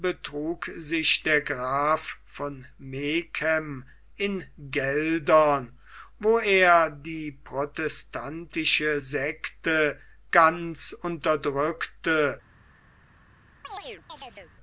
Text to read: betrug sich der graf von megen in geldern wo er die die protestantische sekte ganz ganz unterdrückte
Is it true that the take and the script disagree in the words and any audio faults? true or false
true